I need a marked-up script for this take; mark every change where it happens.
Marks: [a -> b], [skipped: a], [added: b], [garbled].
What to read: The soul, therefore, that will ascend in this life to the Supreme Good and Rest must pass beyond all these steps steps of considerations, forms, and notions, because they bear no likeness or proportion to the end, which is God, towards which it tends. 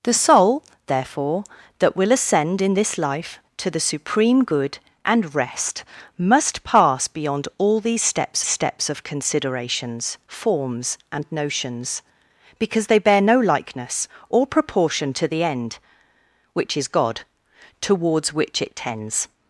The soul, therefore, that will ascend in this life to the Supreme Good and Rest must pass beyond all these steps steps of considerations, forms, and notions, because they bear no likeness or proportion to the end, which is God, towards which it tends.